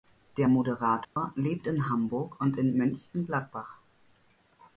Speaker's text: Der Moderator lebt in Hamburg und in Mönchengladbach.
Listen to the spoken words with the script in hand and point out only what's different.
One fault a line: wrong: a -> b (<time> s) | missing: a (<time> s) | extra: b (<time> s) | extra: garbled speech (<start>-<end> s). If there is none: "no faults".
no faults